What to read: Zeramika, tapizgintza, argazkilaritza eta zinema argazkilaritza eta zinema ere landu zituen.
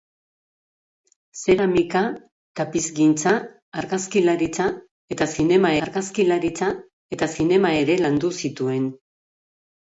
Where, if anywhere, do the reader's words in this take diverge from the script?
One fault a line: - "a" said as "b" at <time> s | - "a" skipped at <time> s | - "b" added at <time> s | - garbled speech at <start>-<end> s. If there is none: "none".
none